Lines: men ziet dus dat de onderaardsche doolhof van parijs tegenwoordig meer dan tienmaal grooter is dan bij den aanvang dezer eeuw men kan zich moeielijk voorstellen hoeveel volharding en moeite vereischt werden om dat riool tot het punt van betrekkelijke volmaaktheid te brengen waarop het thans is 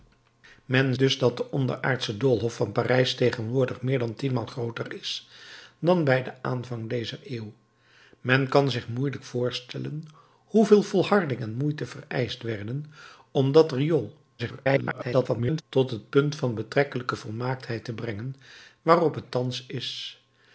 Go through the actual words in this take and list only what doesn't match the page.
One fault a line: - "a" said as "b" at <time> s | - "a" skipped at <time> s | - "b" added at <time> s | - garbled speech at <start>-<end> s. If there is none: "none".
- "ziet" skipped at 1.0 s
- garbled speech at 14.4-15.6 s